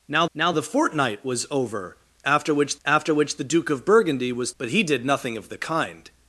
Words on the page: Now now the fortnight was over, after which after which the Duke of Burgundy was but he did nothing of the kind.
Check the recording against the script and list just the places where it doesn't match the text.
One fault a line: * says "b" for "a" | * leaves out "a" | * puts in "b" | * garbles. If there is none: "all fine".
all fine